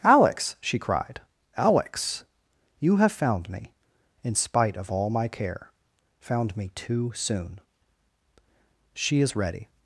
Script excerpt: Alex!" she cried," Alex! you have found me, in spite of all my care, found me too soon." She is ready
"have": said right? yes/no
yes